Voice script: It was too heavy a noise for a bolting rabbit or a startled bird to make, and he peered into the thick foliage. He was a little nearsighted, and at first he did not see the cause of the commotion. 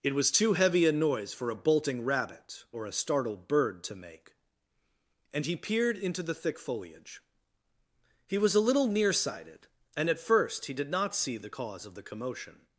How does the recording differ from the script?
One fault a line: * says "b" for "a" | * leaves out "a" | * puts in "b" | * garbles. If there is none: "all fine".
all fine